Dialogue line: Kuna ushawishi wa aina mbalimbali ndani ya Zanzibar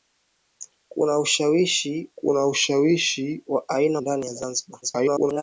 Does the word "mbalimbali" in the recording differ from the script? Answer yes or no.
yes